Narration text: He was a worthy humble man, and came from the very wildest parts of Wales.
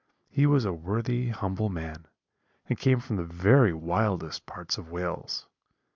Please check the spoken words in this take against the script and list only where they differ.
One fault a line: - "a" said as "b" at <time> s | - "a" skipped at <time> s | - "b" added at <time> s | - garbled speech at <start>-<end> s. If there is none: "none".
none